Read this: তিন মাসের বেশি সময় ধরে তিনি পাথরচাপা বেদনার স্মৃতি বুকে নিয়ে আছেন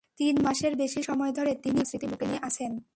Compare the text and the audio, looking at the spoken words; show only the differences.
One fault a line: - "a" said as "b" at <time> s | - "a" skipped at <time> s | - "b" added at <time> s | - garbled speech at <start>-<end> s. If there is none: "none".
- "পাথরচাপা বেদনার" skipped at 1.8 s